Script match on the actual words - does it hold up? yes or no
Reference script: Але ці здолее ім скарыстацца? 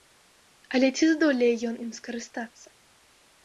no